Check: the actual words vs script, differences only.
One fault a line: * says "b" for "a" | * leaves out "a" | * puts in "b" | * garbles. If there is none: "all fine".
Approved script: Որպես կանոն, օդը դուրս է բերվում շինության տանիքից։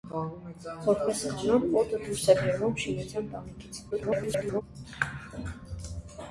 * garbles